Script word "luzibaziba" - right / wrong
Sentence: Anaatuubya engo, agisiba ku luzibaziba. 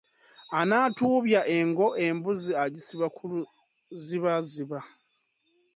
right